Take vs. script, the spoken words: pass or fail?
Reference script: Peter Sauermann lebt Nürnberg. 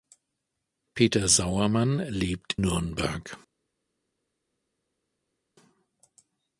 pass